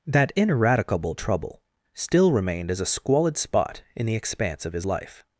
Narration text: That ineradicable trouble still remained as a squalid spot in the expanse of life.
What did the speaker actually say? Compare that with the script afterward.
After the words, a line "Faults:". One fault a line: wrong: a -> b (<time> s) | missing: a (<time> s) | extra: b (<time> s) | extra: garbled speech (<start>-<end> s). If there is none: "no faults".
That ineradicable trouble still remained as a squalid spot in the expanse of his life.
Faults:
extra: his (4.7 s)